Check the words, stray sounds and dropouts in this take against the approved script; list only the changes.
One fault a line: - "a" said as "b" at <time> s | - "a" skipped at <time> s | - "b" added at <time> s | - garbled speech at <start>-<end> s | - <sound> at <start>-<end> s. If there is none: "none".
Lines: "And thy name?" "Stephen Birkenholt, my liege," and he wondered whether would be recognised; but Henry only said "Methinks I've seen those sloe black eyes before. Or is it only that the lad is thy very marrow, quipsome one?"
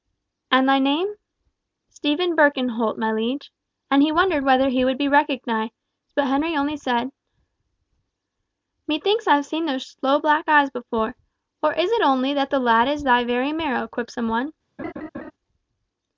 - "he" added at 4.7 s
- laugh at 14.8-15.3 s